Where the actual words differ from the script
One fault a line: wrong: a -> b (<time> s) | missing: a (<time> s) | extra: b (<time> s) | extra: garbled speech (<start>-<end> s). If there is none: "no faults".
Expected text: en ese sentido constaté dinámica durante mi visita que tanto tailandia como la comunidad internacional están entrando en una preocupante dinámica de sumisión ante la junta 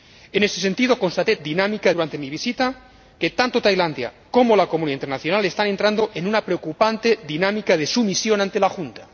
no faults